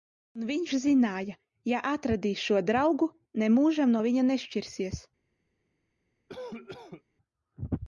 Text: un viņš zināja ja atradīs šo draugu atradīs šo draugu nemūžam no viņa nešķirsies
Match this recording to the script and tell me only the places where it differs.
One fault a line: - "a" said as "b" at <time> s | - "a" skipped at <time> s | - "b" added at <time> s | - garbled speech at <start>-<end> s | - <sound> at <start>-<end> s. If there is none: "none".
- "atradīs šo draugu" skipped at 3.1 s
- cough at 6.3-7.0 s